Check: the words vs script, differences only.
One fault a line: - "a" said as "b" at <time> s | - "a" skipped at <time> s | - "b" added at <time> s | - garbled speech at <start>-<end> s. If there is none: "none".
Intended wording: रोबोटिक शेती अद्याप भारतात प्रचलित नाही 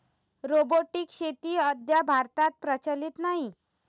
none